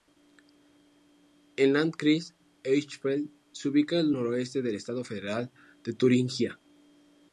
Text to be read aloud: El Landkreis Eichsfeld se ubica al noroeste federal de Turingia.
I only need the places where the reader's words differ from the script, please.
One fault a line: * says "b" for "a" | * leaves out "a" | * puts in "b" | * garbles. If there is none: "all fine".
* puts in "del estado"